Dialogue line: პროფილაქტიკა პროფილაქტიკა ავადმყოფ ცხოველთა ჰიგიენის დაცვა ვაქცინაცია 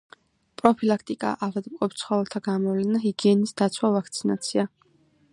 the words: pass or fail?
fail